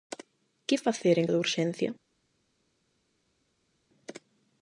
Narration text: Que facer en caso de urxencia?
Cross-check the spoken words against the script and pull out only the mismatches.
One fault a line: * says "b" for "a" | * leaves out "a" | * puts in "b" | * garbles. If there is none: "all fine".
* leaves out "caso"